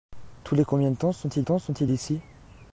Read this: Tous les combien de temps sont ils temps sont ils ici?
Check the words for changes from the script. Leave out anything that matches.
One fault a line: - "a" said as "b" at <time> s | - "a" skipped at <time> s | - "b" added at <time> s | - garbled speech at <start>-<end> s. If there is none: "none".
none